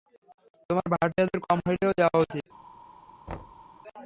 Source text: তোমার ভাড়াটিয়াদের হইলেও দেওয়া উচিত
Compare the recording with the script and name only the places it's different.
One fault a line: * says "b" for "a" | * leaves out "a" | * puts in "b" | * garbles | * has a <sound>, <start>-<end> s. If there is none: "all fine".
* puts in "কম"
* has a thud, 3.3-3.7 s